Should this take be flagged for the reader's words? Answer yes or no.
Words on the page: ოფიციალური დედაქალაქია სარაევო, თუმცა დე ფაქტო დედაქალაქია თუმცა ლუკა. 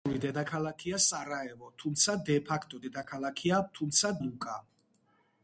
no